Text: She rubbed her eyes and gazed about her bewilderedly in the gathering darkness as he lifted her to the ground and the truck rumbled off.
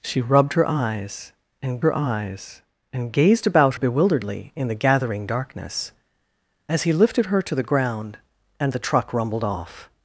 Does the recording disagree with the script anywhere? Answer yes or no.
yes